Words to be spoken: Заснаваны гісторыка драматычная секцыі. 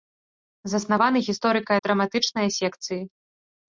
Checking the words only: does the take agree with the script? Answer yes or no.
yes